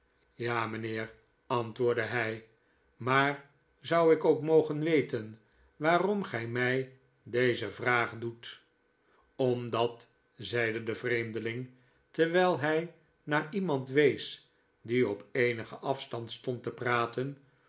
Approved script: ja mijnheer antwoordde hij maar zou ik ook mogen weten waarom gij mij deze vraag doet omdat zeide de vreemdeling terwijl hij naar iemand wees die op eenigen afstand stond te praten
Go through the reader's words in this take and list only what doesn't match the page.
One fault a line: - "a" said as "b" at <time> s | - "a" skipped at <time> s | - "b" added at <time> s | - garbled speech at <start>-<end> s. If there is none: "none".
none